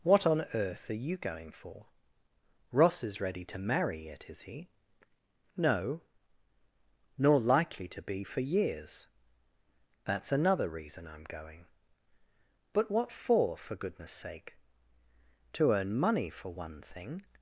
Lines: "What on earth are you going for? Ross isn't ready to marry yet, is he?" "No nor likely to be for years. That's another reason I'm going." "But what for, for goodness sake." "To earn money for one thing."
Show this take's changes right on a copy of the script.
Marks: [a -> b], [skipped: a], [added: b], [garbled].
"What on earth are you going for? Ross [isn't -> is] ready to marry yet, is he?" "No nor likely to be for years. That's another reason I'm going." "But what for, for goodness sake." "To earn money for one thing."